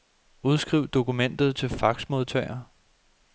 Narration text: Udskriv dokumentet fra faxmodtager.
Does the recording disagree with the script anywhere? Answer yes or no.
yes